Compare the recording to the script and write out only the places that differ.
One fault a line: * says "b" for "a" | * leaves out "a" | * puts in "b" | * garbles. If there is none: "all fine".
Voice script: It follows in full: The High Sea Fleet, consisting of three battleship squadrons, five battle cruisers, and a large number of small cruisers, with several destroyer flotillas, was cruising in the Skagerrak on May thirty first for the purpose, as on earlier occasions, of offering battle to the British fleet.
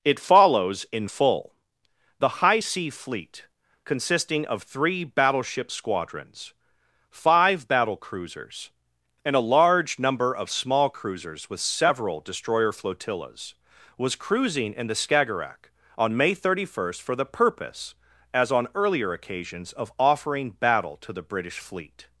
all fine